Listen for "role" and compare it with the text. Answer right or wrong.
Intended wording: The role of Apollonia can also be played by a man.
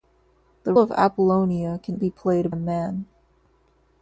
wrong